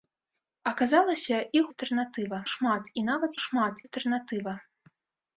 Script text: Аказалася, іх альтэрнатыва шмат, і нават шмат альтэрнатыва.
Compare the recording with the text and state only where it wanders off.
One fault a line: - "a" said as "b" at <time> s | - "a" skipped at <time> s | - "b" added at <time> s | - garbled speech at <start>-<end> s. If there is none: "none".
none